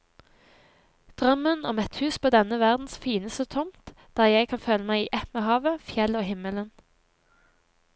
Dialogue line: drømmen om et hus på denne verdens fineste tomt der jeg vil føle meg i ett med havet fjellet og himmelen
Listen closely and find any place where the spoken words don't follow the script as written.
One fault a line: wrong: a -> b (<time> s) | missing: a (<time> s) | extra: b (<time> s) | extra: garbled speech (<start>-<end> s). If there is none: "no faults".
wrong: vil -> kan (4.5 s)